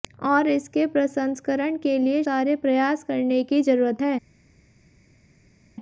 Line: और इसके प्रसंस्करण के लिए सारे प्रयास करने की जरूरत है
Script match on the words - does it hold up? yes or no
yes